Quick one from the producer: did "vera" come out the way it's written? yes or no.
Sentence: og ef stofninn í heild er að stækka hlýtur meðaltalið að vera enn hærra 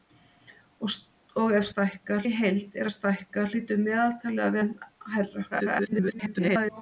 no